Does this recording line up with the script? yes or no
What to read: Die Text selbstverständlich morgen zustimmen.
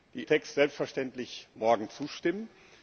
yes